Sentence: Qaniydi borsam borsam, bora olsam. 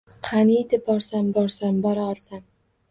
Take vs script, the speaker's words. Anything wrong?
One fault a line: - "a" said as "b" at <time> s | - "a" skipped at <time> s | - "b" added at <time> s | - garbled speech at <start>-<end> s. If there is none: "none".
none